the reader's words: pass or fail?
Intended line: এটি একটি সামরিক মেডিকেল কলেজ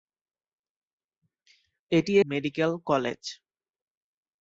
fail